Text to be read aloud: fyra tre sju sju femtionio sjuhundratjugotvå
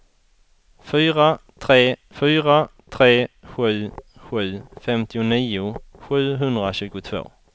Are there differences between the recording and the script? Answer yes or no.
yes